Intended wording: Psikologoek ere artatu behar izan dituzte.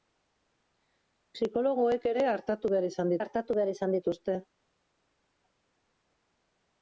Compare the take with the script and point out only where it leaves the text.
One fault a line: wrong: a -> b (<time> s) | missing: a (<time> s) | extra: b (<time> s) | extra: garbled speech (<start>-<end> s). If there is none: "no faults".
extra: artatu behar izan (3.2 s)